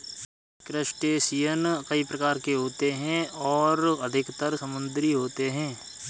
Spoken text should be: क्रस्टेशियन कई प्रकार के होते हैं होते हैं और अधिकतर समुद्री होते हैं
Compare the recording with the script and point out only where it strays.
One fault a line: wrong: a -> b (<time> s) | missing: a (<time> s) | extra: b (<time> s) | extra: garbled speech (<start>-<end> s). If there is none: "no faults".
missing: होते हैं (3.3 s)